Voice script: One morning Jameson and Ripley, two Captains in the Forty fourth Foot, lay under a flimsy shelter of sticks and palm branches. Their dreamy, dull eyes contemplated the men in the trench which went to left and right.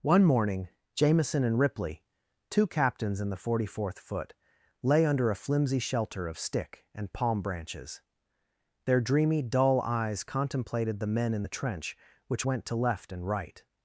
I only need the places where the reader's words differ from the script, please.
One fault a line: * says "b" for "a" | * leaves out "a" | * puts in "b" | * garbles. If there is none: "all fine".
* says "stick" for "sticks"